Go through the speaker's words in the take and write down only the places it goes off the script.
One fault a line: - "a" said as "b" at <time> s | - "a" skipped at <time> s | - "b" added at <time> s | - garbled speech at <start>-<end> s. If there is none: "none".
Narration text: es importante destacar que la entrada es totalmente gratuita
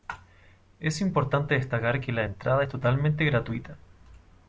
none